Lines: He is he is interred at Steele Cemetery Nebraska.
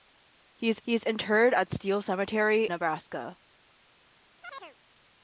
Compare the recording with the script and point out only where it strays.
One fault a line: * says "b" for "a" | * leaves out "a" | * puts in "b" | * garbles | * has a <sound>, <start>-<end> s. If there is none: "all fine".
* has a chirp, 4.4-4.8 s